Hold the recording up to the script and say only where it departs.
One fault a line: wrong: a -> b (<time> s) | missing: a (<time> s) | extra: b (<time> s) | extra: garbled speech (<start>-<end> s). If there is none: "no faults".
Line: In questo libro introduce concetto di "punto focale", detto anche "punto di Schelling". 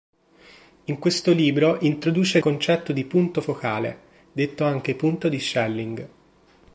no faults